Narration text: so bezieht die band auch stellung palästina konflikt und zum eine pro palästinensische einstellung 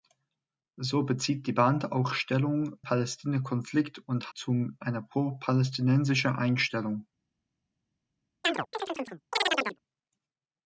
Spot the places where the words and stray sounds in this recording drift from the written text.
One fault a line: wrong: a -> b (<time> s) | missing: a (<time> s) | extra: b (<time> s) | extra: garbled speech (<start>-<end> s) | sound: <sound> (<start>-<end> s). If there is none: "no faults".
sound: chirp (8.4-9.8 s)